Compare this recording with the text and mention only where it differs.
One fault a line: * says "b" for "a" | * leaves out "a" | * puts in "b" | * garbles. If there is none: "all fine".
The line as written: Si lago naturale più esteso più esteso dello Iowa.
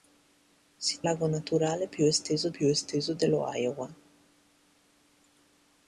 all fine